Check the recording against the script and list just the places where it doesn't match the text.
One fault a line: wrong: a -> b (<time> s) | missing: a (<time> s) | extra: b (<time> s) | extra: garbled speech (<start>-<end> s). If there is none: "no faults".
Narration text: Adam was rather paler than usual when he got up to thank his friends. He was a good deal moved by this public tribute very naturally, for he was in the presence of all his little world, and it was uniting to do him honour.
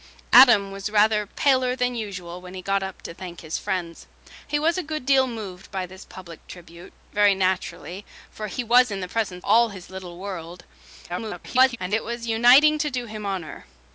missing: of (9.5 s)
extra: garbled speech (11.1-11.8 s)